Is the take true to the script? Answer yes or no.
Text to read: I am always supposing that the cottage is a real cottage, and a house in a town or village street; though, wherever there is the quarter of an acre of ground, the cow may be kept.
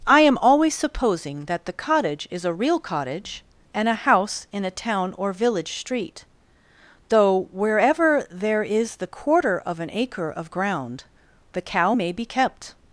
yes